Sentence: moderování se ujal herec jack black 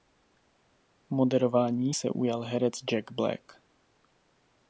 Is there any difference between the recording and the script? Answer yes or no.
no